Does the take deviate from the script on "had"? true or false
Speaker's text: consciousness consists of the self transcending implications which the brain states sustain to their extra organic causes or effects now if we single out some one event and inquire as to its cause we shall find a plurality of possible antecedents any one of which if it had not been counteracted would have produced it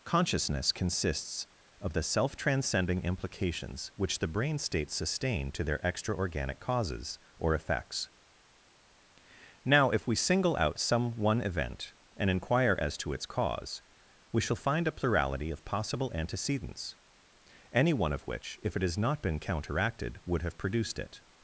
true